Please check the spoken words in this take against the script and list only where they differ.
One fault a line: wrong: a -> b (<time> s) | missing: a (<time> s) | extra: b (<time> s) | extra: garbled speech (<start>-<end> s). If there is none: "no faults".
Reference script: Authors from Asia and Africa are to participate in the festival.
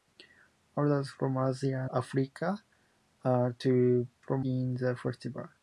missing: and (1.9 s)
wrong: participate -> from (4.2 s)